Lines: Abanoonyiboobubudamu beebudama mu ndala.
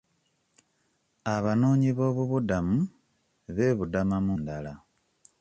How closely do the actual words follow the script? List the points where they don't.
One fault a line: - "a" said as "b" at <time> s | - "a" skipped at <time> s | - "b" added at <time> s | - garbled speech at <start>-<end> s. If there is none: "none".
none